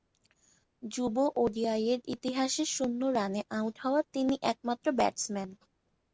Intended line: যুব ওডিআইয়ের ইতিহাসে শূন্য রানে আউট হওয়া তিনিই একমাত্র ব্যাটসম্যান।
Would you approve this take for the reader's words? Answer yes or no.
yes